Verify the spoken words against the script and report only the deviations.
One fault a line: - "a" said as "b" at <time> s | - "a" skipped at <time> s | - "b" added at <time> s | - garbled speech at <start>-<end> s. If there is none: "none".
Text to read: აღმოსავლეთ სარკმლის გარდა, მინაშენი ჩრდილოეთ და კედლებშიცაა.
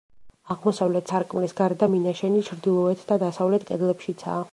- "დასავლეთ" added at 3.2 s